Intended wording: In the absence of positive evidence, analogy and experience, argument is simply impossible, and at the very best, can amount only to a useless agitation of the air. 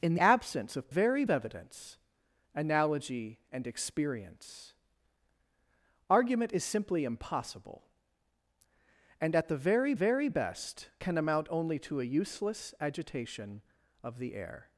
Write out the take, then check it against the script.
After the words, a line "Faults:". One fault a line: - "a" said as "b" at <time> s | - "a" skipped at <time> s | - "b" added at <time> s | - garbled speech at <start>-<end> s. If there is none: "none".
In absence of very evidence, analogy and experience, argument is simply impossible, and at the very very best, can amount only to a useless agitation of the air.
Faults:
- "the" skipped at 0.1 s
- "positive" said as "very" at 0.9 s
- "very" added at 9.9 s